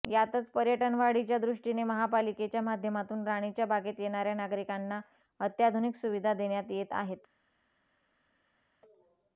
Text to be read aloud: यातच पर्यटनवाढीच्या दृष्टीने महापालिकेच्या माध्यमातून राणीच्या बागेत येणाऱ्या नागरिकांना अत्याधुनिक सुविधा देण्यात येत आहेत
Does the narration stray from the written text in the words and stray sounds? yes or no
no